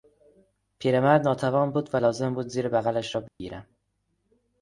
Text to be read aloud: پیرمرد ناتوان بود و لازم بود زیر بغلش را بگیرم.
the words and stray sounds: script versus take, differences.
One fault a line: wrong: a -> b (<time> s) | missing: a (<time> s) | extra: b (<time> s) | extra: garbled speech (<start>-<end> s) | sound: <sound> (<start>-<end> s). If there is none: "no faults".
sound: dropout (3.3-3.4 s)